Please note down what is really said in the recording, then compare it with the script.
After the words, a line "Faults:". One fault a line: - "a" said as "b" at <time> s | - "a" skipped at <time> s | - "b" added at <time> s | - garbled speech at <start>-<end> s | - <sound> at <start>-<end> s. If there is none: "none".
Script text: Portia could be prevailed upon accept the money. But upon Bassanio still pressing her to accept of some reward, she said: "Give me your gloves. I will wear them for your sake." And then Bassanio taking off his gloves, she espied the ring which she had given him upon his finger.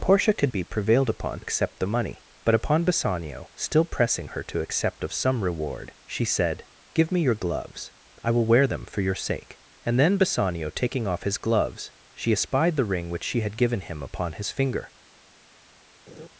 Portia could be prevailed upon accept the money. But upon Bassanio still pressing her to accept of some reward, she said: "Give me your gloves. I will wear them for your sake." And then Bassanio taking off his gloves, she espied the ring which she had given him upon his finger.
Faults:
- laugh at 16.1-16.3 s